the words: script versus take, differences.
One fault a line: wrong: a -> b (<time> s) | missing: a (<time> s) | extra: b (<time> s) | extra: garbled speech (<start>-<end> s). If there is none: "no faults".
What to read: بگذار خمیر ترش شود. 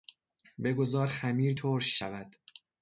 no faults